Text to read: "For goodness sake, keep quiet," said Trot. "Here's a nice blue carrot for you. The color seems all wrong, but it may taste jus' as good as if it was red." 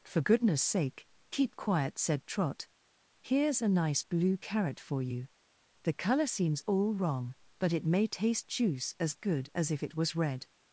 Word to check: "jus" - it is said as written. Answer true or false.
false